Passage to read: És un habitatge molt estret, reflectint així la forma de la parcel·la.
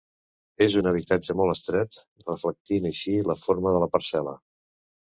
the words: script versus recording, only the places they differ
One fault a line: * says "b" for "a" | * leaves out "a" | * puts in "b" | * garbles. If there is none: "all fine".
all fine